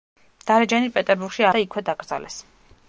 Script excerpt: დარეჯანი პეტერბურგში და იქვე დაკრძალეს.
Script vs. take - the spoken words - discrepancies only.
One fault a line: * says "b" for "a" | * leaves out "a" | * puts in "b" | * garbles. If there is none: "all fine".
all fine